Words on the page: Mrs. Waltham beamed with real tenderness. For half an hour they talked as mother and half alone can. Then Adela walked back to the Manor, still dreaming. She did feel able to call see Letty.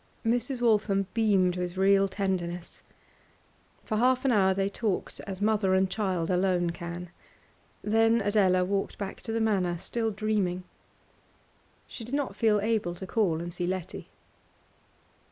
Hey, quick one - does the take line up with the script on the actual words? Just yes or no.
no